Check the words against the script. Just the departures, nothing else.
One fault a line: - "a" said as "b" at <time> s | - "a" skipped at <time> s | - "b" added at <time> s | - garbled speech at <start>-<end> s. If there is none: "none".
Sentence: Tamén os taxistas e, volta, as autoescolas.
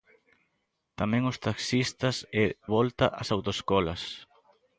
none